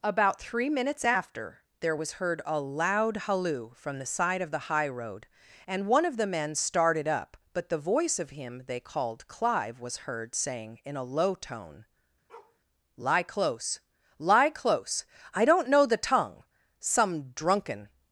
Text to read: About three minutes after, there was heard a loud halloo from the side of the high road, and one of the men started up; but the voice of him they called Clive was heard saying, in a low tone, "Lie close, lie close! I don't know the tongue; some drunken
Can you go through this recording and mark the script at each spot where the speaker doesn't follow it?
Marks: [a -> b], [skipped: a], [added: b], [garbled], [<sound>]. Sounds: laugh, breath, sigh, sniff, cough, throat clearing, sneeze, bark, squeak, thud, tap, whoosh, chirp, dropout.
About three minutes after, there was heard a loud halloo from the side of the high road, and one of the men started up; but the voice of him they called Clive was heard saying, in a low tone, [bark] "Lie close, lie close! I don't know the tongue; some drunken